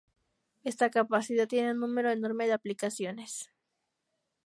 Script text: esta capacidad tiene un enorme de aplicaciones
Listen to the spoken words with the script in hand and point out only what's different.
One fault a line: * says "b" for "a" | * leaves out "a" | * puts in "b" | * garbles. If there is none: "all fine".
* puts in "número"